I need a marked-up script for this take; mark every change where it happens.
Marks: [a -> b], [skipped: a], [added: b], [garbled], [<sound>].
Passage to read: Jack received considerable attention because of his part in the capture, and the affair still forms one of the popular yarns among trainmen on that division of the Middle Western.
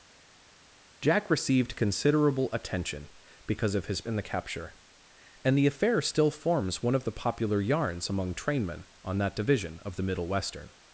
Jack received considerable attention because of his [skipped: part] in the capture, and the affair still forms one of the popular yarns among trainmen on that division of the Middle Western.